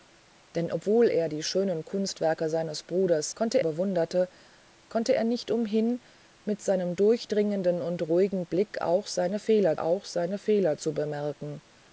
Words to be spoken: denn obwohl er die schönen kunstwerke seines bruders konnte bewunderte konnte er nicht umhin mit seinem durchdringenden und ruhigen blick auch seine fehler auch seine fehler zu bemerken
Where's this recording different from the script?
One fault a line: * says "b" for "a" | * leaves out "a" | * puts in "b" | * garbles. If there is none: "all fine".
all fine